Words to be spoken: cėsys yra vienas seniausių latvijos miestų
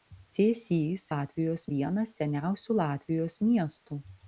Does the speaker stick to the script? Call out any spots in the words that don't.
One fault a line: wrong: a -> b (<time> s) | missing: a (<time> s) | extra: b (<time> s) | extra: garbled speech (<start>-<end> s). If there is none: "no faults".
wrong: yra -> latvijos (1.1 s)